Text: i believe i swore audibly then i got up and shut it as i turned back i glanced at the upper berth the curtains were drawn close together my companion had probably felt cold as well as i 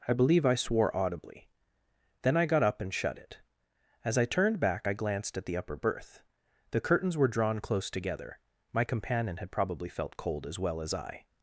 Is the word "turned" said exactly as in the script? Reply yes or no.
yes